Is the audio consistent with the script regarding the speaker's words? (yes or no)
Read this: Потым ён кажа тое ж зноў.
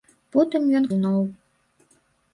no